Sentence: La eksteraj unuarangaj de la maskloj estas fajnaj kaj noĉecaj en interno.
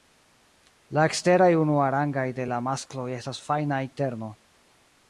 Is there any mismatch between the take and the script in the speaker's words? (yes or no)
yes